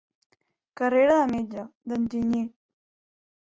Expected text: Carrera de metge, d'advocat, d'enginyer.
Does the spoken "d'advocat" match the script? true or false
false